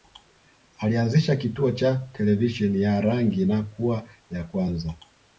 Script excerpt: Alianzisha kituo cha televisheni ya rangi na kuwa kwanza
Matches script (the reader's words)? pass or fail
fail